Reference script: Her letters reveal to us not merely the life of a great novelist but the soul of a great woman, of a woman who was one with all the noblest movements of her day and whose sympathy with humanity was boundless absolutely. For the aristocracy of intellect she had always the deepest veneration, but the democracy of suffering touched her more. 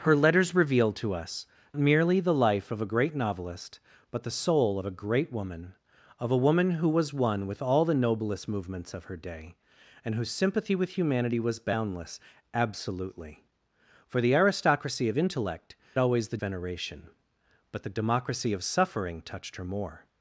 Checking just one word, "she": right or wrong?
wrong